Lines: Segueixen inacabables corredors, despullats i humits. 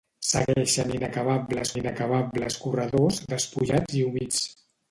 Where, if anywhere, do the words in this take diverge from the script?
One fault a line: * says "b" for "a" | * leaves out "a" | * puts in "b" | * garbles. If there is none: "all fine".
* puts in "inacabables"